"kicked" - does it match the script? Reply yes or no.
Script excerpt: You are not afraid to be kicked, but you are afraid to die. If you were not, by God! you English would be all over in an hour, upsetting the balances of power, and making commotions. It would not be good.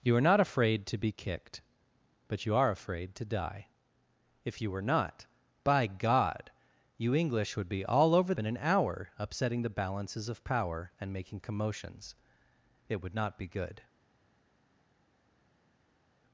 yes